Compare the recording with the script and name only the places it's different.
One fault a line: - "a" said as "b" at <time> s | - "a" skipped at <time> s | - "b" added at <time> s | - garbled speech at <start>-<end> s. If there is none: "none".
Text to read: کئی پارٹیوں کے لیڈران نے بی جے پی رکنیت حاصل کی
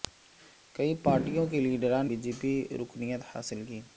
- "نے" skipped at 2.0 s